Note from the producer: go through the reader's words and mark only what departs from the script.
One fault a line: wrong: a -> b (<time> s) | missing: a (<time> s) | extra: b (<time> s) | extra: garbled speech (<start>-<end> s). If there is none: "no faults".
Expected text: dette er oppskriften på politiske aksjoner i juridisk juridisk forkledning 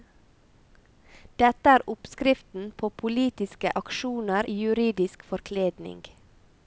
missing: juridisk (5.2 s)